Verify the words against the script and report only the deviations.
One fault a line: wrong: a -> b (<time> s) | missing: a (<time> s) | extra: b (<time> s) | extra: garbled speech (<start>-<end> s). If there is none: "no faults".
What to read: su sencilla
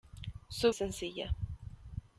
no faults